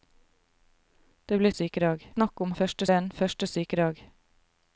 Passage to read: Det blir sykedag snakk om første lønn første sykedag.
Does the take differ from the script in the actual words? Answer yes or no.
no